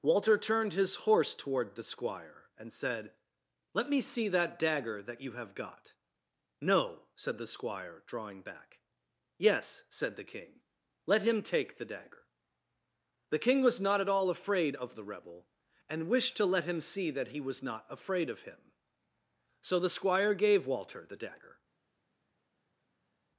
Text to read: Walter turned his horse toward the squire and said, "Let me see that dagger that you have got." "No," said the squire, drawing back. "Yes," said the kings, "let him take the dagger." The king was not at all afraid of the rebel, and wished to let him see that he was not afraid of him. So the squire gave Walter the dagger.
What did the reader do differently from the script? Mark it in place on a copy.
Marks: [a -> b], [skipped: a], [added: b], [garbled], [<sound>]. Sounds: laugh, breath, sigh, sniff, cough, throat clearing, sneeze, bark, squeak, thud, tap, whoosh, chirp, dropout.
Walter turned his horse toward the squire and said, "Let me see that dagger that you have got." "No," said the squire, drawing back. "Yes," said the [kings, -> king] "let him take the dagger." The king was not at all afraid of the rebel, and wished to let him see that he was not afraid of him. So the squire gave Walter the dagger.